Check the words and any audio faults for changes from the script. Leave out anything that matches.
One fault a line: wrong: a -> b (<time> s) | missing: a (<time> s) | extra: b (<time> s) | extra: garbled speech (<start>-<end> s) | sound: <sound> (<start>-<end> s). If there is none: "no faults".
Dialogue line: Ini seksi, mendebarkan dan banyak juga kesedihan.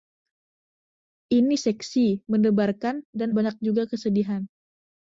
no faults